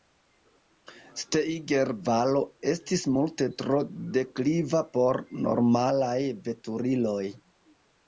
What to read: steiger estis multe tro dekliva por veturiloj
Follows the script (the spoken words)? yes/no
no